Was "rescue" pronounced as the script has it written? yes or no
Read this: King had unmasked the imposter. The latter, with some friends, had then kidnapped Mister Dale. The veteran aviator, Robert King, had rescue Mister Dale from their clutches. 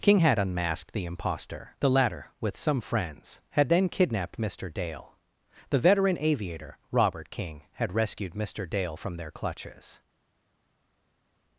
no